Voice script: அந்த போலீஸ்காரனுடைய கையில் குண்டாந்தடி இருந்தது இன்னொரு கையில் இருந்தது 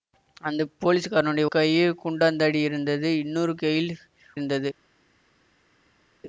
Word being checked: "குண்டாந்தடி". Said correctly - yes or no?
yes